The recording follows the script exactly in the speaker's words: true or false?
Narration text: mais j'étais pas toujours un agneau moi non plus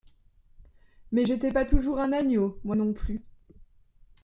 true